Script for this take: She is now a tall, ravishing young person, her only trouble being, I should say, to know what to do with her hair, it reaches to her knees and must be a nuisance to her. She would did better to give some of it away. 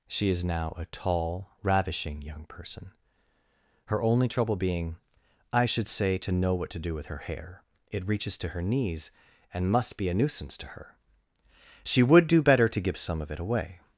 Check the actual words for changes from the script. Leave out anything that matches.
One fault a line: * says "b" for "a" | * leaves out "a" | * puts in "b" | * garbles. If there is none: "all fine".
* says "do" for "did"